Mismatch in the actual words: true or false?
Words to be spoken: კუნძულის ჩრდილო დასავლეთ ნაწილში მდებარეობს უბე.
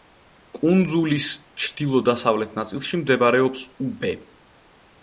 false